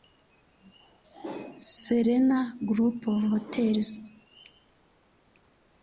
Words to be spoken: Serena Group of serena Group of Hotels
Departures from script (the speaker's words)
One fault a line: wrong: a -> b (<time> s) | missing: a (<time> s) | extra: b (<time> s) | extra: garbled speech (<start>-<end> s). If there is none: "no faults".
missing: serena Group of (3.2 s)